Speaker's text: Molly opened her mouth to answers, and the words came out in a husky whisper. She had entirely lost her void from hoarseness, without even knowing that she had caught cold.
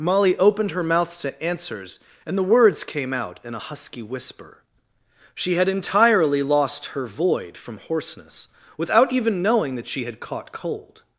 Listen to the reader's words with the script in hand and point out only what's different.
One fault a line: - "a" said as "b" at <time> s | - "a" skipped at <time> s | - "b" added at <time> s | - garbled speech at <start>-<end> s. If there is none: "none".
none